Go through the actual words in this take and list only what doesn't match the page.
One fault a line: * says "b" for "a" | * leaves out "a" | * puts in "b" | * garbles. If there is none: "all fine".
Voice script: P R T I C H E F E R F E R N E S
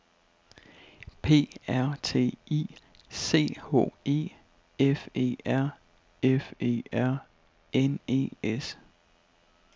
all fine